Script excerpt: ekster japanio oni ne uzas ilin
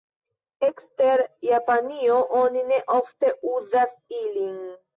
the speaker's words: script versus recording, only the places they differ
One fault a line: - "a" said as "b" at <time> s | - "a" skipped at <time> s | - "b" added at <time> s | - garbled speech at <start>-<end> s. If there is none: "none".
- "ofte" added at 3.0 s